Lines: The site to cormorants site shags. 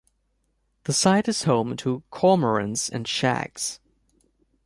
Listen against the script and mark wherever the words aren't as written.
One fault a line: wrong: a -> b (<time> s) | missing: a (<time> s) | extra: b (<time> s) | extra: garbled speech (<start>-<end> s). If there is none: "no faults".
extra: is home (1.3 s)
wrong: site -> and (2.9 s)